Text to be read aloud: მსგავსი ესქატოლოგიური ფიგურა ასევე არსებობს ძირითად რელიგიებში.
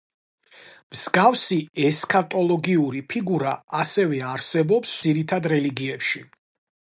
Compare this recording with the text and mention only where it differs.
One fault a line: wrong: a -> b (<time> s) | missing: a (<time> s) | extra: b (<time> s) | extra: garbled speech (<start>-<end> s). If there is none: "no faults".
no faults